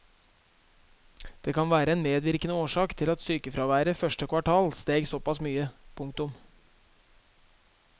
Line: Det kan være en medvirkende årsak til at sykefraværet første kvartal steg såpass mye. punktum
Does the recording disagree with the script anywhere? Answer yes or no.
no